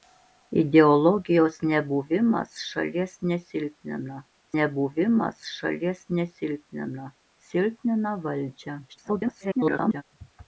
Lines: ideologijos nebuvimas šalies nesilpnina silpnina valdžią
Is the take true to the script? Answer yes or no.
no